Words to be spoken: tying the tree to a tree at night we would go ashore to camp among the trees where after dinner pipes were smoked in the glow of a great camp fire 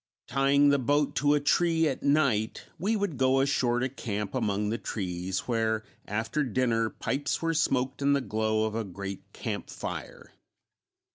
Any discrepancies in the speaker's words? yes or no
yes